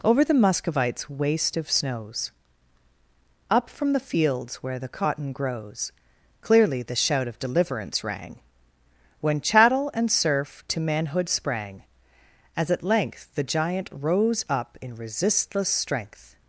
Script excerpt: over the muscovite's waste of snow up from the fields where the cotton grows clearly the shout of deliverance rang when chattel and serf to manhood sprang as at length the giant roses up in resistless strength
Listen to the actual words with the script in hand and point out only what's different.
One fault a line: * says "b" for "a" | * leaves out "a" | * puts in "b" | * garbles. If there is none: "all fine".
* says "snows" for "snow"
* says "rose" for "roses"